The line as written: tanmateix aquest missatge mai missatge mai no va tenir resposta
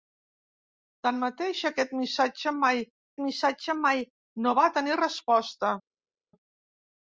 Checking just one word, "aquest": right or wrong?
right